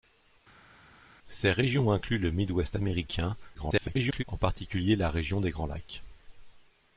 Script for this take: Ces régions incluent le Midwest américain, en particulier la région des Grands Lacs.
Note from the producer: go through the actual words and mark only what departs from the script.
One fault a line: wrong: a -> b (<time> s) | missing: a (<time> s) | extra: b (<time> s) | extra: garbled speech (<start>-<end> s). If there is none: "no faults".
extra: garbled speech (3.5-4.2 s)